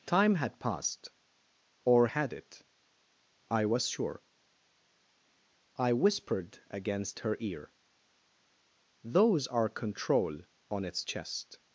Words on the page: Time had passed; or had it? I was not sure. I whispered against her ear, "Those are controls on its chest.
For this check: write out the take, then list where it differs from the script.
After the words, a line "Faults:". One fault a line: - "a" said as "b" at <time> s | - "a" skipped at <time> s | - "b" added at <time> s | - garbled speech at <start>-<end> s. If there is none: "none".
Time had passed; or had it? I was sure. I whispered against her ear, "Those are control on its chest.
Faults:
- "not" skipped at 3.9 s
- "controls" said as "control" at 9.7 s